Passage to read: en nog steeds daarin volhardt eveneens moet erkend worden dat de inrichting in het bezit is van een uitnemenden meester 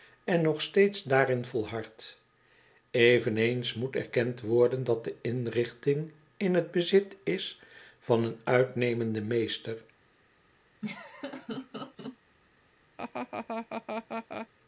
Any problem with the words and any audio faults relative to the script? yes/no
yes